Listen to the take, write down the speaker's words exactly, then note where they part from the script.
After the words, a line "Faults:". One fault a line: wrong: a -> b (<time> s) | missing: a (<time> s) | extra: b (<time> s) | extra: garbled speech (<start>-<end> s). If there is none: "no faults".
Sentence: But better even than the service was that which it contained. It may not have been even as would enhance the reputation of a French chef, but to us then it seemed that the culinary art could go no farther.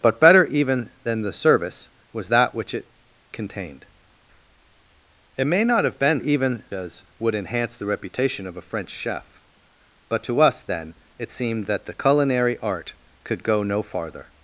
But better even than the service was that which it contained. It may not have been even as would enhance the reputation of a French chef, but to us then it seemed that the culinary art could go no farther.
Faults:
no faults